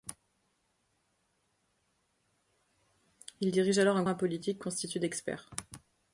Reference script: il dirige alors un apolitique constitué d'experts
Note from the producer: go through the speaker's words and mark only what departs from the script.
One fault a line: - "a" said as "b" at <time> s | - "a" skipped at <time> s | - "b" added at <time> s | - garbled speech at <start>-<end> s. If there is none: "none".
none